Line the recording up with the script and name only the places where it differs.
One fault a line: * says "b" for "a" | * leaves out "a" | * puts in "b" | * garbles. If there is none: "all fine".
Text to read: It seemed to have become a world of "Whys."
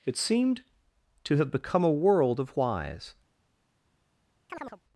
all fine